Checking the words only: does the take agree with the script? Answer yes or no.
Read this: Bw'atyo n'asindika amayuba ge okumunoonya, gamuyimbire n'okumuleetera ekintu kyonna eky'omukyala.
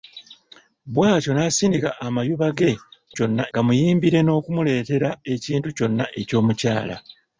no